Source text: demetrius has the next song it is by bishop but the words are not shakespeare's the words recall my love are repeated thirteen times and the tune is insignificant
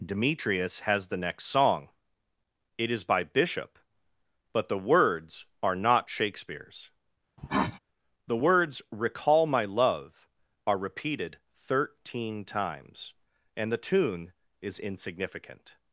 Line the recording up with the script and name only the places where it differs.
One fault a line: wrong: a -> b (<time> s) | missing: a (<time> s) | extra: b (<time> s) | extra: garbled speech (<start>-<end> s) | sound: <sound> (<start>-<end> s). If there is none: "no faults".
sound: cough (7.4-7.8 s)